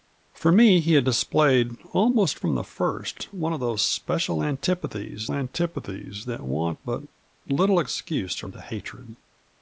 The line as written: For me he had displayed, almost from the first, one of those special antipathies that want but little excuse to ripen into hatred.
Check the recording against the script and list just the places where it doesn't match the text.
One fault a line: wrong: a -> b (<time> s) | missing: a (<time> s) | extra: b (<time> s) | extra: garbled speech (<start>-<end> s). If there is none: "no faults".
extra: antipathies (5.3 s)
missing: ripen (8.5 s)